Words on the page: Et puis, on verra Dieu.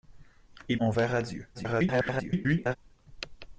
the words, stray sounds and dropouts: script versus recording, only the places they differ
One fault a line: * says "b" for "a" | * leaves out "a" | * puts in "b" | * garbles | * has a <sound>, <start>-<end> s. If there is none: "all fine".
* leaves out "puis"
* garbles